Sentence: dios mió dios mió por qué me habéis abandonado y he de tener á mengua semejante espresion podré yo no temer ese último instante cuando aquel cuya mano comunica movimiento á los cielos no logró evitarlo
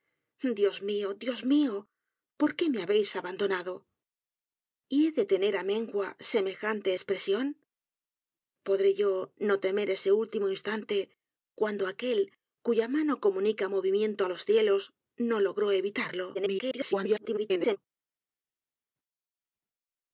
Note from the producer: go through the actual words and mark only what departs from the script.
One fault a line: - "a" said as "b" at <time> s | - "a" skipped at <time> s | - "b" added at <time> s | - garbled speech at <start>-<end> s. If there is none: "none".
- garbled speech at 16.3-17.8 s